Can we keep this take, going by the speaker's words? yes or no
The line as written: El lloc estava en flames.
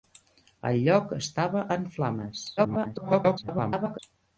no